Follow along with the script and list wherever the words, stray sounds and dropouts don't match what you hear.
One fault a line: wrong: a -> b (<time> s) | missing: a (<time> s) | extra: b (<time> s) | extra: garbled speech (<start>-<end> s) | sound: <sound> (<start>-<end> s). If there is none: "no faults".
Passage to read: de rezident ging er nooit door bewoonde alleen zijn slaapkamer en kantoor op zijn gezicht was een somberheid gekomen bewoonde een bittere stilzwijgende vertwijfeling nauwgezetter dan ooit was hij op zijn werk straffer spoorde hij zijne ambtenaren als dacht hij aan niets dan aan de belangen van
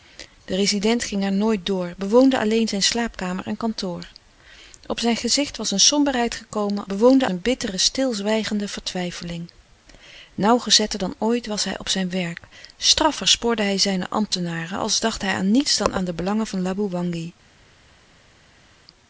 no faults